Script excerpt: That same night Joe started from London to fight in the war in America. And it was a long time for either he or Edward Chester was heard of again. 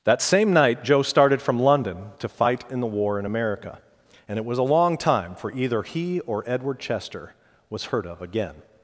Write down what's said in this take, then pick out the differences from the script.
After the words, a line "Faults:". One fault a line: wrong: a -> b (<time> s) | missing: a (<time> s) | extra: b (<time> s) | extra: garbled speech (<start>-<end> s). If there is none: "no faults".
That same night Joe started from London to fight in the war in America. And it was a long time for either he or Edward Chester was heard of again.
Faults:
no faults